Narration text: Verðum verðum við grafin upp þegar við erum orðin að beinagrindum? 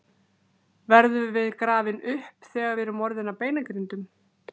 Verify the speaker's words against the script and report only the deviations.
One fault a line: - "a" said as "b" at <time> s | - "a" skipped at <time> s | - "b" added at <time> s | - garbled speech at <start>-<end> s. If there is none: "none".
- "verðum" skipped at 1.3 s